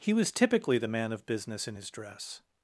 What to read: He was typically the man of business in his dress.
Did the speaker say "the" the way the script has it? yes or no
yes